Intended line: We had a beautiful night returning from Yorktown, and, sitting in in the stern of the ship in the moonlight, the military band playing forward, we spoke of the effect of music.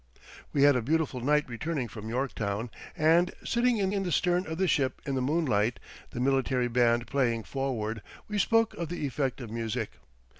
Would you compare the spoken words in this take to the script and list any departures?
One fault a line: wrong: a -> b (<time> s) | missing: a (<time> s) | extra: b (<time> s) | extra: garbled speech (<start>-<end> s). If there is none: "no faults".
no faults